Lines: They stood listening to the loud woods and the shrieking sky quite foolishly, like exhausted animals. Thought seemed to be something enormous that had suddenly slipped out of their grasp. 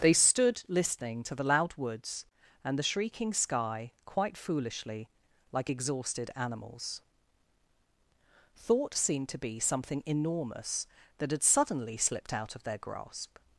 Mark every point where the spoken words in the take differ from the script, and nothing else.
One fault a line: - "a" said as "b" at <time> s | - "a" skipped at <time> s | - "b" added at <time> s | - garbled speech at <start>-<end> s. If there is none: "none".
none